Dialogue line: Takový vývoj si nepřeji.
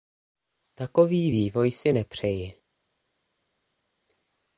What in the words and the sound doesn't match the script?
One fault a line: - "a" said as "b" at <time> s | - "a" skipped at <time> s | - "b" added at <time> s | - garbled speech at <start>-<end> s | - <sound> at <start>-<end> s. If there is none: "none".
none